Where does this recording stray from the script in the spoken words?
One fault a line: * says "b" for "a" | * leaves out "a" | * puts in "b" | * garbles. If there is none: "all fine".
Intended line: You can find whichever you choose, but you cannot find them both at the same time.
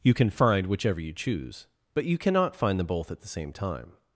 all fine